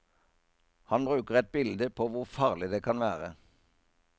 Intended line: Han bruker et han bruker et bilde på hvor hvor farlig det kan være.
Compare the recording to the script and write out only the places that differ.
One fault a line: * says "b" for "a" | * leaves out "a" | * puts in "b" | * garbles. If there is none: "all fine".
* leaves out "han bruker et"
* leaves out "hvor"